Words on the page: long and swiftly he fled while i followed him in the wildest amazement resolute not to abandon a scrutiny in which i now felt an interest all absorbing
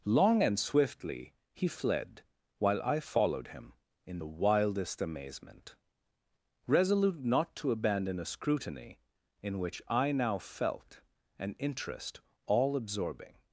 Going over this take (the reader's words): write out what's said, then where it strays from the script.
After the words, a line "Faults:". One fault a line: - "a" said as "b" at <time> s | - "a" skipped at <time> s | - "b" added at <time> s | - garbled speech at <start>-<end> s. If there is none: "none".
long and swiftly he fled while i followed him in the wildest amazement resolute not to abandon a scrutiny in which i now felt an interest all absorbing
Faults:
none